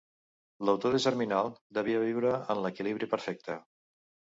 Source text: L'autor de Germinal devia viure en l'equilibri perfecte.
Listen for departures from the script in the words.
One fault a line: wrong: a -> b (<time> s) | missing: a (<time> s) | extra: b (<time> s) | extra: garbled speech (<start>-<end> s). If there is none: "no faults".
no faults